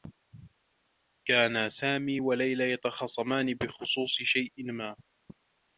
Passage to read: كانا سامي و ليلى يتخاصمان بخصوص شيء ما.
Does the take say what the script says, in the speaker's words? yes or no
yes